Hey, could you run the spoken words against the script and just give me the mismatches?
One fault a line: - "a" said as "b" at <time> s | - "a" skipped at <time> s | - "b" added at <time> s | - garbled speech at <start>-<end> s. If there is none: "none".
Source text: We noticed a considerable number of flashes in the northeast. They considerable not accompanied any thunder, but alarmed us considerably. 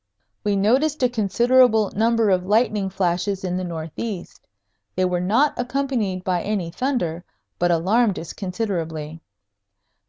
- "lightning" added at 2.5 s
- "considerable" said as "were" at 5.0 s
- "by" added at 6.2 s